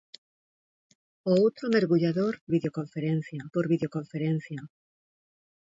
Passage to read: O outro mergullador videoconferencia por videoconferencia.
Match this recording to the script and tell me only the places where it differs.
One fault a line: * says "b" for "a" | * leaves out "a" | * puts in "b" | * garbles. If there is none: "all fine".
all fine